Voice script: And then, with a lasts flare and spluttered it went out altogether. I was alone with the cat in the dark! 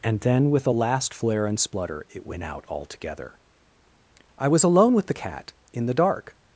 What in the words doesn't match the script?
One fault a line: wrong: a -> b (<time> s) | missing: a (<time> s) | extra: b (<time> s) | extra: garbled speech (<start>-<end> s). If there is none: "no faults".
wrong: lasts -> last (0.7 s)
wrong: spluttered -> splutter (1.6 s)